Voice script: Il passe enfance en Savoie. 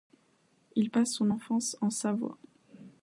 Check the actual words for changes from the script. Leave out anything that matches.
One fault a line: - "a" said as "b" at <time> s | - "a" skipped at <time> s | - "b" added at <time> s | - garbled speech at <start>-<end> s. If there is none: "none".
- "son" added at 1.1 s